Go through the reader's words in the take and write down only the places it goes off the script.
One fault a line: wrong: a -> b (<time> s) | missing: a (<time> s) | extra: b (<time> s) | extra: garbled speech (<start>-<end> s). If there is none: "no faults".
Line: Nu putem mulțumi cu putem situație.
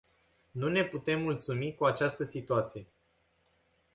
extra: ne (0.7 s)
wrong: putem -> această (1.9 s)